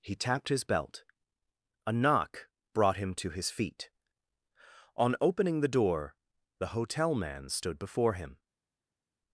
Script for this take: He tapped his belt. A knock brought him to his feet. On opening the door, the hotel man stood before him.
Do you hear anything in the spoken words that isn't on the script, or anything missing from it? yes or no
no